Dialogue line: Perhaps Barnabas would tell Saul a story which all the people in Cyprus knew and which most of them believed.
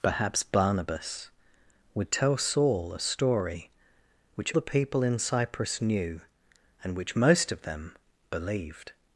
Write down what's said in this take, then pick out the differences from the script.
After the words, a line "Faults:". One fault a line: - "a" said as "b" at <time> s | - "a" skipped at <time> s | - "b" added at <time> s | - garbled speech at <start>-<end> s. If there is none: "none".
Perhaps Barnabas would tell Saul a story which the people in Cyprus knew and which most of them believed.
Faults:
- "all" skipped at 4.5 s